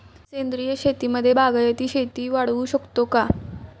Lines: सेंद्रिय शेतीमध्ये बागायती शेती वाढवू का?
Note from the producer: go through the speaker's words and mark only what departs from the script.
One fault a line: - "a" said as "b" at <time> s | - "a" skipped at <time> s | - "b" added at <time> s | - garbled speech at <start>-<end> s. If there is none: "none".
- "शकतो" added at 2.6 s